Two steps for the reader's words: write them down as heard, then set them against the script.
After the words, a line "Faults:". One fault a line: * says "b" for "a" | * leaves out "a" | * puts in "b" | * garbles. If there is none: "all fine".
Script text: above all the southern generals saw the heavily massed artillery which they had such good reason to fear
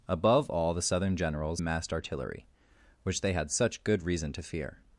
above all the southern generals massed artillery which they had such good reason to fear
Faults:
* leaves out "saw the heavily"